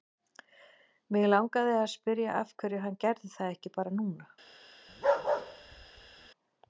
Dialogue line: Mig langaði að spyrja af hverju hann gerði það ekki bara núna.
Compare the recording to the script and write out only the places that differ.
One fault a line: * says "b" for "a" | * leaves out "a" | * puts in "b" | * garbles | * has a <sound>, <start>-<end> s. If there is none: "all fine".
* has a bark, 4.9-6.3 s